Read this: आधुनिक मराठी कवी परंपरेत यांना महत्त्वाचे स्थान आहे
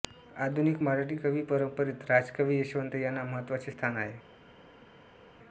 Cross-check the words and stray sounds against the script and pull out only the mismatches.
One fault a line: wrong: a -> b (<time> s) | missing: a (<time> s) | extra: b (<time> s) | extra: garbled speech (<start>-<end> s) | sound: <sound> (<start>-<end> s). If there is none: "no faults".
extra: राजकवी यशवंत (2.1 s)